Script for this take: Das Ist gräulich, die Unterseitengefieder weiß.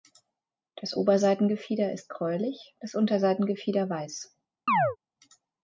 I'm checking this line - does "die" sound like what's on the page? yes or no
no